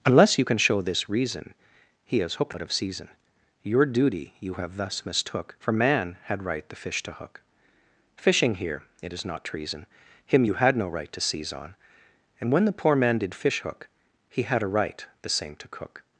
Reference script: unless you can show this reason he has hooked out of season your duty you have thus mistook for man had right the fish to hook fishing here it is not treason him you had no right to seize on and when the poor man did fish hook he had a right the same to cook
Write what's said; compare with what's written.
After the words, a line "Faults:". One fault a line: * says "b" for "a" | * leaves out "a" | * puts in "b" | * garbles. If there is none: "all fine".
unless you can show this reason he has hooked out of season your duty you have thus mistook for man had right the fish to hook fishing here it is not treason him you had no right to seize on and when the poor man did fish hook he had a right the same to cook
Faults:
all fine